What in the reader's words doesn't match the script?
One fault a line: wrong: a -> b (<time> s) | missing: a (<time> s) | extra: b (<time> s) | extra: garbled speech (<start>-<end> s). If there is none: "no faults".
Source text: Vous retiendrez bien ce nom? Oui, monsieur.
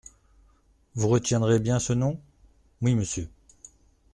no faults